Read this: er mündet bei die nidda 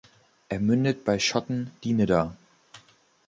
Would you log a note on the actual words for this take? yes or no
yes